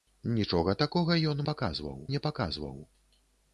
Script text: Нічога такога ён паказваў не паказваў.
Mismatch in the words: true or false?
false